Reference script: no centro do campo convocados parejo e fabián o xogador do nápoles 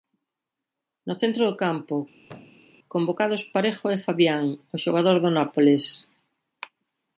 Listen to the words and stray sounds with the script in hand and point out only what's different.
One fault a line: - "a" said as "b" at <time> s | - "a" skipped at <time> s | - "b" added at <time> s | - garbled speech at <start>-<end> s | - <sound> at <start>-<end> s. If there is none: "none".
- thud at 2.2-2.7 s